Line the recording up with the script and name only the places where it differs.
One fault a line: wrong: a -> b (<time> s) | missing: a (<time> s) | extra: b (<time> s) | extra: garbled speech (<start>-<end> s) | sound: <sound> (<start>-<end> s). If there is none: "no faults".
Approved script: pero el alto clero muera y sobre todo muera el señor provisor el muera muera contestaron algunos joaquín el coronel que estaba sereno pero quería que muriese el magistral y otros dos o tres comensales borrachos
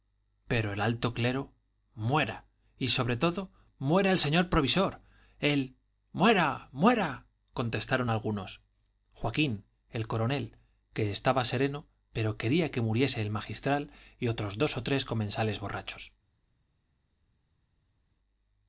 no faults